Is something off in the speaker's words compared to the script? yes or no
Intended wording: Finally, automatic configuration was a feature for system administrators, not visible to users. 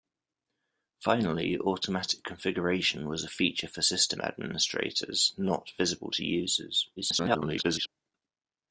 yes